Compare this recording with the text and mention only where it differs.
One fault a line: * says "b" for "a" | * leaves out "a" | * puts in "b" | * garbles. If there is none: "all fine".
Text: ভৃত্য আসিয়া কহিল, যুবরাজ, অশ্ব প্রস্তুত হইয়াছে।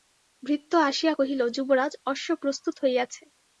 all fine